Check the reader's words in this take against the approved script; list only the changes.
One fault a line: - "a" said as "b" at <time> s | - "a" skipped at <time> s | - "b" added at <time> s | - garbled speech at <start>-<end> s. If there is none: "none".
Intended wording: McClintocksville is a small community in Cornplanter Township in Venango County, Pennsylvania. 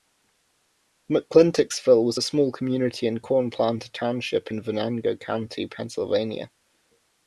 - "is" said as "was" at 2.0 s